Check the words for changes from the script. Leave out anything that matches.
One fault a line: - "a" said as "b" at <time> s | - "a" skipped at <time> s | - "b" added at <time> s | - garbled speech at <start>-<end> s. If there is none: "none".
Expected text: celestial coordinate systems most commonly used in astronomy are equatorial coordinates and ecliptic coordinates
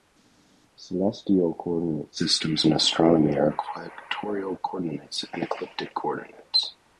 - "most commonly used" skipped at 2.6 s